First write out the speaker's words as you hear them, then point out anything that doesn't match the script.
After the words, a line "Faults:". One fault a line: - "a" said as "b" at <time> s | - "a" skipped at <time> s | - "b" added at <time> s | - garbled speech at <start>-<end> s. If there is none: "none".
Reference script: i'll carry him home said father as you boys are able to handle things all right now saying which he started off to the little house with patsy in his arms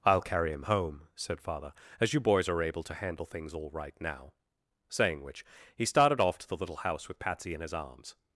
i'll carry him home said father as you boys are able to handle things all right now saying which he started off to the little house with patsy in his arms
Faults:
none